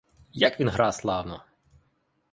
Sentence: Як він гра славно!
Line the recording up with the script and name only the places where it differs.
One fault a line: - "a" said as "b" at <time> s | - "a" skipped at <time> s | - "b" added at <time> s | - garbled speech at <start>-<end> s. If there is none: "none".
none